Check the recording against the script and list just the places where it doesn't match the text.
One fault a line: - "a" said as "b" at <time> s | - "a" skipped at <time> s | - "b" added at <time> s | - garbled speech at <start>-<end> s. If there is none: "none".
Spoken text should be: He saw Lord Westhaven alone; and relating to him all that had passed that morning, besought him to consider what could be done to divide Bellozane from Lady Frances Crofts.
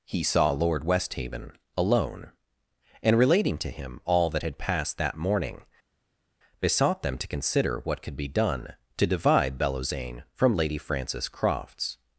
- "him" said as "them" at 7.0 s